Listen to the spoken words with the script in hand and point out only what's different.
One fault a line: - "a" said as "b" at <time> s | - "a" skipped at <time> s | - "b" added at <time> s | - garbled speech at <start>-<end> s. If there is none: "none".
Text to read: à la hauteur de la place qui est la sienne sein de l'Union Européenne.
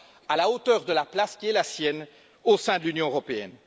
- "au" added at 2.4 s